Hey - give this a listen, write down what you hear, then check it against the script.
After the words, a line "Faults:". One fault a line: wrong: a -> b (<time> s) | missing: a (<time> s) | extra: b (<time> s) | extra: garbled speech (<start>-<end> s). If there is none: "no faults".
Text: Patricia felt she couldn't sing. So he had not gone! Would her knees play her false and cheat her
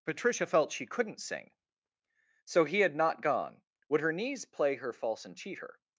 Patricia felt she couldn't sing. So he had not gone! Would her knees play her false and cheat her
Faults:
no faults